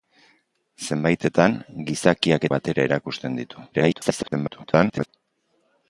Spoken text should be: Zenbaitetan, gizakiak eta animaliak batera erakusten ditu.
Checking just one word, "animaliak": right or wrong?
wrong